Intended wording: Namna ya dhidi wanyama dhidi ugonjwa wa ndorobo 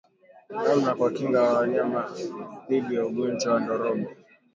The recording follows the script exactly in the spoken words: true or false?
false